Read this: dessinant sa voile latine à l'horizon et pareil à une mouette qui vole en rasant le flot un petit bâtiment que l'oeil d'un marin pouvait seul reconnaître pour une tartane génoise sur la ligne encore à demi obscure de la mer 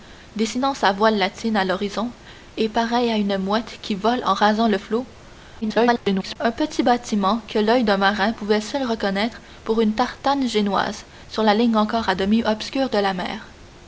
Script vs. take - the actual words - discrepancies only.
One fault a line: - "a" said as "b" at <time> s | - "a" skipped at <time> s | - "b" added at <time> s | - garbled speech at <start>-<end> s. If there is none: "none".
- garbled speech at 5.6-6.4 s